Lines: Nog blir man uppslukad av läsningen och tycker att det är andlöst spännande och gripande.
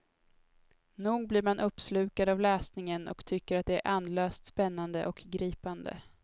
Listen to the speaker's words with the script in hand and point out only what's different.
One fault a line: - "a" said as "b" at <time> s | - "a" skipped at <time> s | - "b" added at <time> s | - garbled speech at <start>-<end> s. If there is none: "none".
none